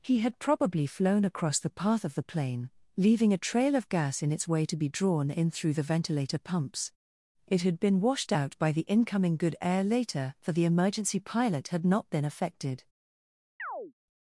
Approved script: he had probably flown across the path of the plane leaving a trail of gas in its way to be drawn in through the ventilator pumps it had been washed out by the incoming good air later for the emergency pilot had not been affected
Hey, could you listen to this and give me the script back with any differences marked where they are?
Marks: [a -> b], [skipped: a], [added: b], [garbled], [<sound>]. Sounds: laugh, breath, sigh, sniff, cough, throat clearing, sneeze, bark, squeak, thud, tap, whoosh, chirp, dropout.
he had probably flown across the path of the plane leaving a trail of gas in its way to be drawn in through the ventilator pumps it had been washed out by the incoming good air later for the emergency pilot had not been affected [chirp]